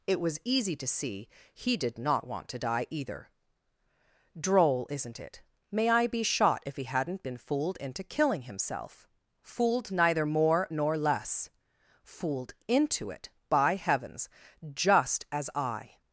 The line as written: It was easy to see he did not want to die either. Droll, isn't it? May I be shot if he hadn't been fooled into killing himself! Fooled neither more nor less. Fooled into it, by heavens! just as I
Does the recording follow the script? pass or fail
pass